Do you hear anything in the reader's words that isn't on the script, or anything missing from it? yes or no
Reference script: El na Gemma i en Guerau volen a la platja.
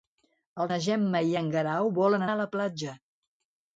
no